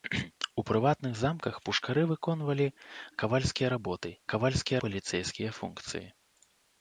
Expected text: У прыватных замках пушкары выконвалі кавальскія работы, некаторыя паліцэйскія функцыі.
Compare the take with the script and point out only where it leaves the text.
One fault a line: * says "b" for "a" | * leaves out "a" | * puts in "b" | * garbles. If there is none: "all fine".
* says "кавальскія" for "некаторыя"